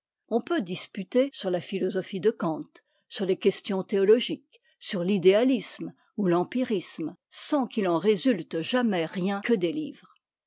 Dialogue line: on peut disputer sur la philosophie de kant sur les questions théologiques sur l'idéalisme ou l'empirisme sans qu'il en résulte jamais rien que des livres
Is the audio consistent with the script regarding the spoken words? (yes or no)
yes